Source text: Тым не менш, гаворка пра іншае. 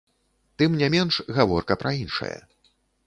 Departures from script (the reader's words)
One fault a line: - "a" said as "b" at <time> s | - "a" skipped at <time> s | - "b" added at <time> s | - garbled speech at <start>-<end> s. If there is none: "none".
none